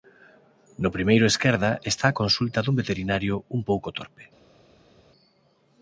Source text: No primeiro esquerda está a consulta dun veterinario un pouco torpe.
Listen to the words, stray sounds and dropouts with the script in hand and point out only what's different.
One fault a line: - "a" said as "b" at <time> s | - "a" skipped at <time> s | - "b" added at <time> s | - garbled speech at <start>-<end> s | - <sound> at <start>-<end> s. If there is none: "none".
none